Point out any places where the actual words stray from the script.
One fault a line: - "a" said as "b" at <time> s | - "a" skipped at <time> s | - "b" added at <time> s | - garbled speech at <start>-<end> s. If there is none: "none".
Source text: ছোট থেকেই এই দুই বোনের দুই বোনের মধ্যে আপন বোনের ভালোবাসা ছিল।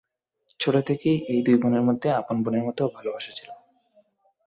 - "দুই বোনের" skipped at 1.8 s
- "মতো" added at 2.6 s